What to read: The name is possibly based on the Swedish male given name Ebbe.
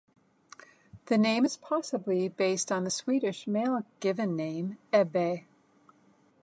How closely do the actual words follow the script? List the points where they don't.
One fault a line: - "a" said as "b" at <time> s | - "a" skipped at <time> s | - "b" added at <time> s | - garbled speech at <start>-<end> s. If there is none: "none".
none